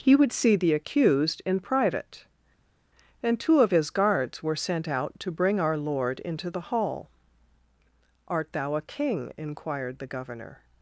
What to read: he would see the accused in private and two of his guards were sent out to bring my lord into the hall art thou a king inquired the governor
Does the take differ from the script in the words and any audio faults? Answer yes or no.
yes